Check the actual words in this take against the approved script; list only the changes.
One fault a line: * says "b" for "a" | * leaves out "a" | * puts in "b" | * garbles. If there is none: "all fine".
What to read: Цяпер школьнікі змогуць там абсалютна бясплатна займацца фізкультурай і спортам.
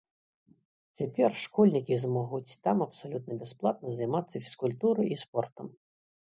all fine